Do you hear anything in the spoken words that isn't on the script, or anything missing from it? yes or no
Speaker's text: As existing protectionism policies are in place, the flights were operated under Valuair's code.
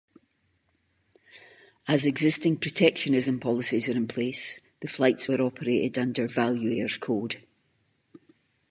no